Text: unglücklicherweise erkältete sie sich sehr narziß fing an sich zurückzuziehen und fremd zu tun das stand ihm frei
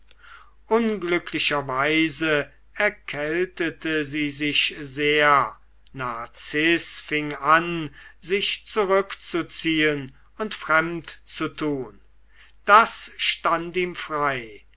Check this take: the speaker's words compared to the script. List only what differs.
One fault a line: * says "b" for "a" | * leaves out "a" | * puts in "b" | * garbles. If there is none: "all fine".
all fine